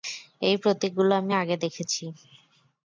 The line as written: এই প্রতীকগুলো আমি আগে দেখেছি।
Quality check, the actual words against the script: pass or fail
pass